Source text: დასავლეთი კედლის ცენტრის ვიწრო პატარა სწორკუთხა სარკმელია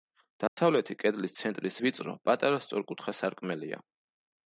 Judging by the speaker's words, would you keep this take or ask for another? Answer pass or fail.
pass